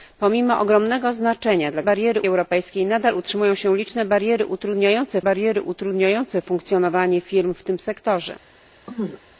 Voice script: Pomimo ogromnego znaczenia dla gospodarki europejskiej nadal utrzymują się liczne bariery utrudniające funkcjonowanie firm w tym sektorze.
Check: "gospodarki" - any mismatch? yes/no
yes